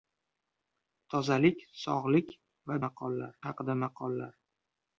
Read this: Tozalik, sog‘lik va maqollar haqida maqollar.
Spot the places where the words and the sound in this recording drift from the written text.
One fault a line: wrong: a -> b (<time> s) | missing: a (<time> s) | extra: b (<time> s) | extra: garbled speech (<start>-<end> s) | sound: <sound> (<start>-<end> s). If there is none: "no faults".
no faults